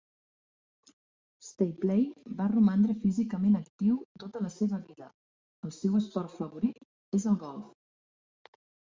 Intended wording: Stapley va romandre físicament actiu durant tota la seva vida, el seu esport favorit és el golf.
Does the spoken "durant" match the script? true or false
false